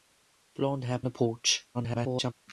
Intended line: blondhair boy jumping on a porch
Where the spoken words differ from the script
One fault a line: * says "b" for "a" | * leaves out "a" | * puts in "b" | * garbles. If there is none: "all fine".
* leaves out "boy jumping on"
* garbles